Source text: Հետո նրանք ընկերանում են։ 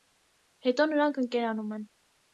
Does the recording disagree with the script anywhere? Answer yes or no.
no